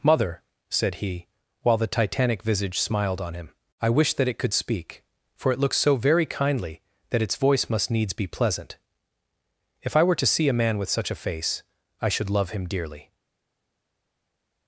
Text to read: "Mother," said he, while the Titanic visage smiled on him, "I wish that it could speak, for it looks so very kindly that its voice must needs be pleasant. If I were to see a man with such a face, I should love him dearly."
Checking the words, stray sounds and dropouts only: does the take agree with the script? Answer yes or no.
yes